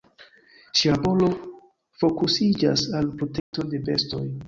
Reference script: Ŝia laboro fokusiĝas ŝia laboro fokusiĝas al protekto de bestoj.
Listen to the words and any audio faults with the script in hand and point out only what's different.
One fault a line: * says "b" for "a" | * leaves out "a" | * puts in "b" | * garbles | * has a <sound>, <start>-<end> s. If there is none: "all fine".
* leaves out "ŝia laboro fokusiĝas"
* has a dropout, 3.4-3.5 s